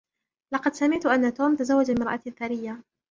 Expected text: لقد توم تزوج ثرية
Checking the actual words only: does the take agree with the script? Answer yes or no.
no